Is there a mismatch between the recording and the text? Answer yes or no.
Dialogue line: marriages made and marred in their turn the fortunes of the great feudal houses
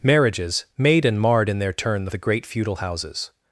yes